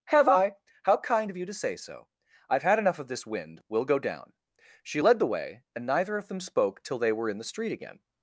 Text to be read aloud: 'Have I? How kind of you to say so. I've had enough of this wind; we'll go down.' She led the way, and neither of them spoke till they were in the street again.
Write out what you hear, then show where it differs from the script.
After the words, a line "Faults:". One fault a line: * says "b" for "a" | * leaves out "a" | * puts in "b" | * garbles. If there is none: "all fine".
'Have I? How kind of you to say so. I've had enough of this wind; we'll go down.' She led the way, and neither of them spoke till they were in the street again.
Faults:
all fine